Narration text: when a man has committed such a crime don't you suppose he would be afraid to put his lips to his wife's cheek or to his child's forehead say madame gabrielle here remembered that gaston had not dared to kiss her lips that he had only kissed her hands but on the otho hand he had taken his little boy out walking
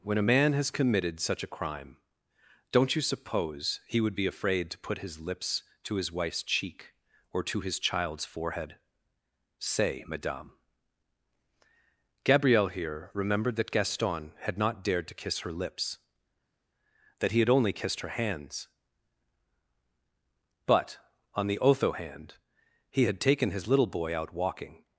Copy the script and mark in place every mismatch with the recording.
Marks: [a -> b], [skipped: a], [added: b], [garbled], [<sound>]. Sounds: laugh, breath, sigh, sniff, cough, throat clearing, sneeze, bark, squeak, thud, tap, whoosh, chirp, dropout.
when a man has committed such a crime don't you suppose he would be afraid to put his lips to his wife's cheek or to his child's forehead say madame gabrielle here remembered that gaston had not dared to kiss her lips that he had only kissed her hands but on the otho hand he had taken his little boy out walking